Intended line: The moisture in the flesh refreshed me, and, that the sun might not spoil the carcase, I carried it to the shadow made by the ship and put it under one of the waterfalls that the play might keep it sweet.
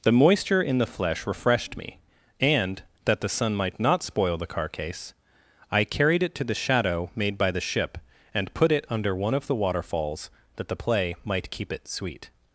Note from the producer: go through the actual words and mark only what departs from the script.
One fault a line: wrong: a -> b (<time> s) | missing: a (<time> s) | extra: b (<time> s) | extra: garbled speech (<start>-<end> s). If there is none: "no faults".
no faults